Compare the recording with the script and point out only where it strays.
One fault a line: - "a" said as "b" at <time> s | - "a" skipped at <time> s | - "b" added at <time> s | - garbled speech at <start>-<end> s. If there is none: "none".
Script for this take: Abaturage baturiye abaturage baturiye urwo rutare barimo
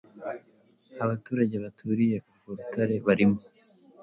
- "abaturage baturiye" skipped at 2.2 s